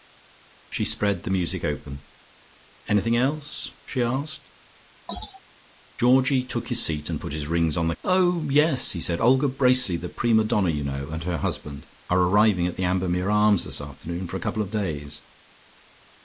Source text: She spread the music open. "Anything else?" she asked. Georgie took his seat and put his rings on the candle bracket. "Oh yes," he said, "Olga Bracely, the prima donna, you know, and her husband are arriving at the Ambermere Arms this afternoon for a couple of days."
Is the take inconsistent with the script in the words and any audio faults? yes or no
yes